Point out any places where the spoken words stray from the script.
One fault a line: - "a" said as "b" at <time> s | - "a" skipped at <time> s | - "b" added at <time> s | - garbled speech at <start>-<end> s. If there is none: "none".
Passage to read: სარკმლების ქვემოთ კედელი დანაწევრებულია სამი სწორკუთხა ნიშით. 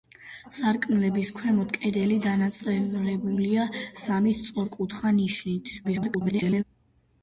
- garbled speech at 5.8-6.6 s